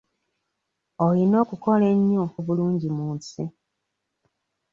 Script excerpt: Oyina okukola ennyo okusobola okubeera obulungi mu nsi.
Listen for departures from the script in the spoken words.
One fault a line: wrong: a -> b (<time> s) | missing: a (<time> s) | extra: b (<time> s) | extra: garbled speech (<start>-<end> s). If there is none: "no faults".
missing: okusobola okubeera (2.2 s)